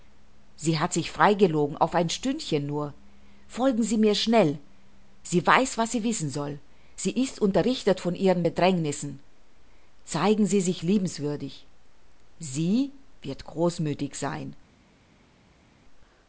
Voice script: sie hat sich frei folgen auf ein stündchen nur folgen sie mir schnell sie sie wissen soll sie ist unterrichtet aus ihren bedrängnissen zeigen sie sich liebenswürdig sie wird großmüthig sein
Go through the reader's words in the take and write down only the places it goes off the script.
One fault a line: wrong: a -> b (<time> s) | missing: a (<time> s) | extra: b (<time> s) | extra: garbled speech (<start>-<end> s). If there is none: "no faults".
wrong: folgen -> gelogen (1.4 s)
extra: weiß was (5.5 s)
wrong: aus -> von (8.0 s)